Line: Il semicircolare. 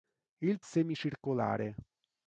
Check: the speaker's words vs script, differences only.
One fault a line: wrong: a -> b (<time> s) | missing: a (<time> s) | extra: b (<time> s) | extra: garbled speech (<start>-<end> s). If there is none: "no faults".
no faults